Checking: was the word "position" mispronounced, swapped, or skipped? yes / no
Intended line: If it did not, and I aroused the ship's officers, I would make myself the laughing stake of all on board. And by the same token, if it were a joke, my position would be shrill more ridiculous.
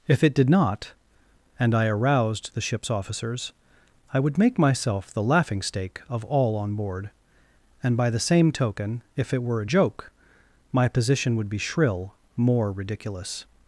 no